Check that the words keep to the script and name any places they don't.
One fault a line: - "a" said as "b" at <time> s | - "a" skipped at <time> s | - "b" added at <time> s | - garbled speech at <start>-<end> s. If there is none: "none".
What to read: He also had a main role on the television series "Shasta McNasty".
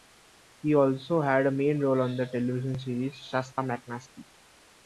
none